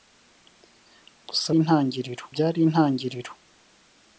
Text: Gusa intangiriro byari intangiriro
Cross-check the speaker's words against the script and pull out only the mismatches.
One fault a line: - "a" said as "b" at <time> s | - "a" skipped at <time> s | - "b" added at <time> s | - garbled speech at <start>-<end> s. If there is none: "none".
none